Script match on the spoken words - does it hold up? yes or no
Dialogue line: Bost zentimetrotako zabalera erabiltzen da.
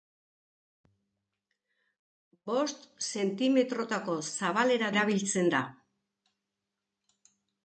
yes